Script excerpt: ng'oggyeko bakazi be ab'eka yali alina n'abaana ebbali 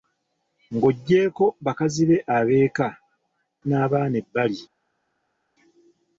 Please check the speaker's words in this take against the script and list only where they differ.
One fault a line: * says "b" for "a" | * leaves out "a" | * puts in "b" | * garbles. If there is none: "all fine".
* leaves out "yali alina"